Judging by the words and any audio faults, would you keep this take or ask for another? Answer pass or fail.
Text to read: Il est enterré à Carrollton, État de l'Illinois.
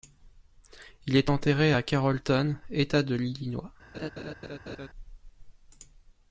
fail